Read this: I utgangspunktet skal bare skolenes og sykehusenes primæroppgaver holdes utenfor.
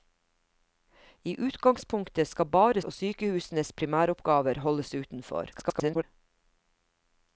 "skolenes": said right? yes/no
no